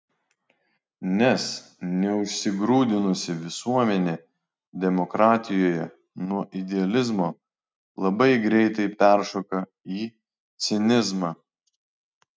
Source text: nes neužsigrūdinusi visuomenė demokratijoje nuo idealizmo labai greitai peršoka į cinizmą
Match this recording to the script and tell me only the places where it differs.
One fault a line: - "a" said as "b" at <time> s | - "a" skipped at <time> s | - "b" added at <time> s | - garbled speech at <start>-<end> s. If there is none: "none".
none